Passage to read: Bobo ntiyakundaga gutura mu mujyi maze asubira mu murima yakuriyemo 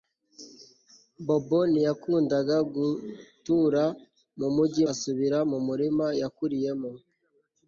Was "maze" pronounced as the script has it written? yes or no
no